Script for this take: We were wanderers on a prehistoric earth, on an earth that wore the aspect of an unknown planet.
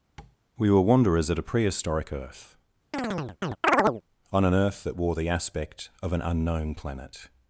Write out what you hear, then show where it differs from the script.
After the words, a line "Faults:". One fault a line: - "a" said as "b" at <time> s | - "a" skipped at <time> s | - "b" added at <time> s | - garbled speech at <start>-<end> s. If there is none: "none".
We were wanderers at a prehistoric earth, on an earth that wore the aspect of an unknown planet.
Faults:
- "on" said as "at" at 1.3 s